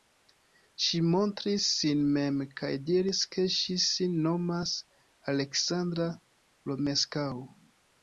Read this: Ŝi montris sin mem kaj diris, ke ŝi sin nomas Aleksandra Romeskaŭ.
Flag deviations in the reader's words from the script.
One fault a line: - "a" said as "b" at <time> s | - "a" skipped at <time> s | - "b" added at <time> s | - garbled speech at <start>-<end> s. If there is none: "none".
none